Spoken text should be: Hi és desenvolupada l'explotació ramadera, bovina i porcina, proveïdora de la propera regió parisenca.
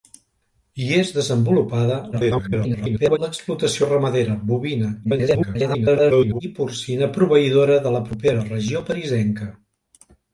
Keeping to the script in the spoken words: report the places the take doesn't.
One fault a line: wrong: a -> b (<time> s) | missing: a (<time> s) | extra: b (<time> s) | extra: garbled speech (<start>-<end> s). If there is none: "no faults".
extra: garbled speech (2.1-3.2 s)
extra: garbled speech (5.0-6.4 s)